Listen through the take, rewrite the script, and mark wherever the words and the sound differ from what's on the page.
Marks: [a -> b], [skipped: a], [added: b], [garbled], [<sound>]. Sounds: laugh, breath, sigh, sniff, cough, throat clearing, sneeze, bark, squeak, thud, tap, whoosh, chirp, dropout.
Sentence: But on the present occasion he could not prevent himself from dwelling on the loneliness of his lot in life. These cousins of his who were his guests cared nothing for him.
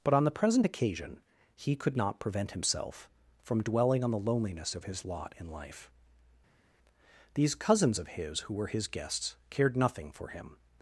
But on the present occasion he could not prevent himself from dwelling on the loneliness of his lot in life. These cousins of his who were his guests cared nothing for him.